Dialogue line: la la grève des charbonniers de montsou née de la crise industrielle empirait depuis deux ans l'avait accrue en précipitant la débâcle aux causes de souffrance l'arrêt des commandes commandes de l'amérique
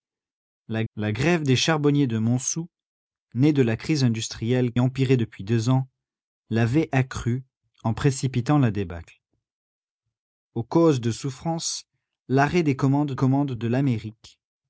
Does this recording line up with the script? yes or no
yes